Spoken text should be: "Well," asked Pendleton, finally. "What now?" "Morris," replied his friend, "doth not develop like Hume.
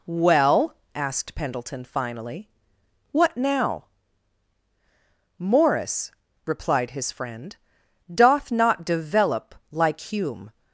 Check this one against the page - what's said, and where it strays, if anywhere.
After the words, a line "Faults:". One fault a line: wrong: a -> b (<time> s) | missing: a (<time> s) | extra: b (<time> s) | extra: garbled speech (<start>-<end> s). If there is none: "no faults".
"Well," asked Pendleton, finally. "What now?" "Morris," replied his friend, "doth not develop like Hume.
Faults:
no faults